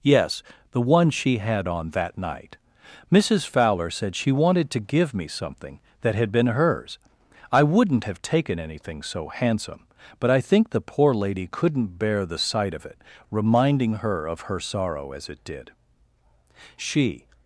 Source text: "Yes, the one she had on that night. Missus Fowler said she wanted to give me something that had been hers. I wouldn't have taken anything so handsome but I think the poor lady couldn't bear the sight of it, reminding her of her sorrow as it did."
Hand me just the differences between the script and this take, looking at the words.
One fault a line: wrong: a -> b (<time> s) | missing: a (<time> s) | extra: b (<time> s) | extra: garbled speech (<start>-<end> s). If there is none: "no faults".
extra: She (16.8 s)